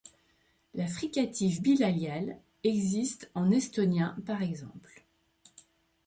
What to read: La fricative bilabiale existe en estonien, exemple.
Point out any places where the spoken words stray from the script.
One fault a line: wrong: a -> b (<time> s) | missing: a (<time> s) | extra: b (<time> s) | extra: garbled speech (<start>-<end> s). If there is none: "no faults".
extra: par (4.3 s)